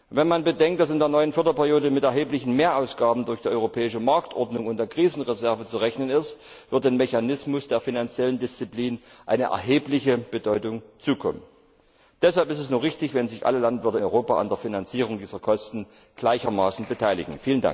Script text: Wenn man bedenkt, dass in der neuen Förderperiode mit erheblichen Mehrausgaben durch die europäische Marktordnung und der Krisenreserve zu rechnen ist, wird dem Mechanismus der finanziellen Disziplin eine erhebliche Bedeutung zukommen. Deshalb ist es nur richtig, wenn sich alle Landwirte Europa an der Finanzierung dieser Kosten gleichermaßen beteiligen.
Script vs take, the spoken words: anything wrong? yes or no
no